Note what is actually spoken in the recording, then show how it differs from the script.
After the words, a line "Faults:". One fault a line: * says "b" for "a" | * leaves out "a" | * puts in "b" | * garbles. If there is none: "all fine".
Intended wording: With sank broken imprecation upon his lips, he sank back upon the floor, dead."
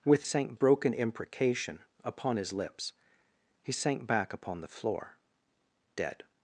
With sank broken imprecation upon his lips, he sank back upon the floor, dead."
Faults:
all fine